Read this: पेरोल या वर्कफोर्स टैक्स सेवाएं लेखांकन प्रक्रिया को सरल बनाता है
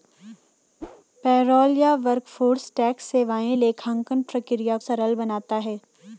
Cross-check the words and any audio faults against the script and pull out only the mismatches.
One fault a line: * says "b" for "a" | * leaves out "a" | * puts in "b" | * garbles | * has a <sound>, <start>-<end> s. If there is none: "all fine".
* has a whoosh, 0.8-1.0 s
* leaves out "को"